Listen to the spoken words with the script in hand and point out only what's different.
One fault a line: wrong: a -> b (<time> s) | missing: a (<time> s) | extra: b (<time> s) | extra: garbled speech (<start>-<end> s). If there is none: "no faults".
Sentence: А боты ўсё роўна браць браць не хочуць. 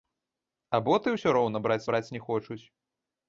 no faults